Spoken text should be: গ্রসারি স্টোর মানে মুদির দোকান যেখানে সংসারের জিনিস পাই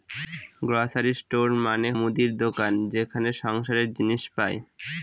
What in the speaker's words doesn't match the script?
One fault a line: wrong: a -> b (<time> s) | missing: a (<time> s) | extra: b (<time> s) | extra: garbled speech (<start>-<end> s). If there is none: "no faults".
no faults